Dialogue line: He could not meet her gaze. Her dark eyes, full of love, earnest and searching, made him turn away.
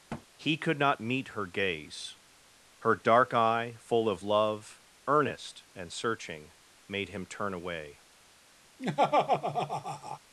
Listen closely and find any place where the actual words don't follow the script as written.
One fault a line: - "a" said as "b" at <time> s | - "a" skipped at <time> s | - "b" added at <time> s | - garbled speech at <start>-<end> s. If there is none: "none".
- "eyes" said as "eye" at 3.3 s